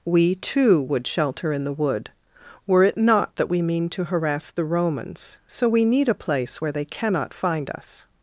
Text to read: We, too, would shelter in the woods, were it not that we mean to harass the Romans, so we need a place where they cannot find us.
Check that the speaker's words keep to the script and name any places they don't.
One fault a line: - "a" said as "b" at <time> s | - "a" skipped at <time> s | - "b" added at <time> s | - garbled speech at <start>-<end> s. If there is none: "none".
- "woods" said as "wood" at 1.7 s